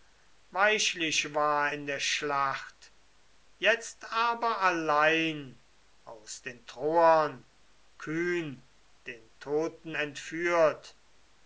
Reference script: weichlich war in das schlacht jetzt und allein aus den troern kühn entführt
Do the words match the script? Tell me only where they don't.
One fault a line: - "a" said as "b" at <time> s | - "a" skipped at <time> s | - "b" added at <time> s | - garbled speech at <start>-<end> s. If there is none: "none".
- "das" said as "der" at 1.9 s
- "und" said as "aber" at 4.1 s
- "den toten" added at 9.1 s